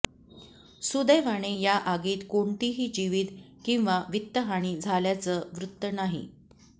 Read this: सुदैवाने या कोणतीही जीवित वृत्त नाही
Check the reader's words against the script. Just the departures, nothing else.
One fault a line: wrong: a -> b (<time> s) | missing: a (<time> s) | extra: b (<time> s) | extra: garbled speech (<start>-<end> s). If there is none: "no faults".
extra: आगीत (1.9 s)
extra: किंवा वित्तहानी झाल्याचं (3.7 s)